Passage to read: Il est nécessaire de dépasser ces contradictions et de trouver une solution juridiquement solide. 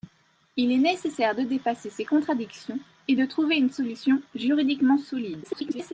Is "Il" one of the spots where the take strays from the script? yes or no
no